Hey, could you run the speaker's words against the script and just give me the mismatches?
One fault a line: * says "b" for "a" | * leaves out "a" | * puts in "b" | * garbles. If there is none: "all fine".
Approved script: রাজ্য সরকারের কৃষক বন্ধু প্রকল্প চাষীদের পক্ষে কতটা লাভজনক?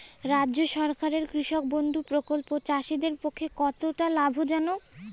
all fine